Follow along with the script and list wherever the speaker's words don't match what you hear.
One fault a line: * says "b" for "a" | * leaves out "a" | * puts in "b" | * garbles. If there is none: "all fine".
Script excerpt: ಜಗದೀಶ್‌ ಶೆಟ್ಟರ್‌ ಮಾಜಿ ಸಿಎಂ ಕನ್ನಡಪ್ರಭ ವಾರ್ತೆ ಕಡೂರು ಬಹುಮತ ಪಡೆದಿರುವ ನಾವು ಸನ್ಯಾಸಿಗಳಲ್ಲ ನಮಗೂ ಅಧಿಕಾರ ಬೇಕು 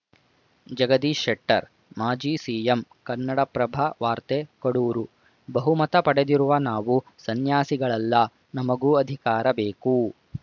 all fine